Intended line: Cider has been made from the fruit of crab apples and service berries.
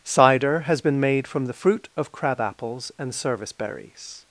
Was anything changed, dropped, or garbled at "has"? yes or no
no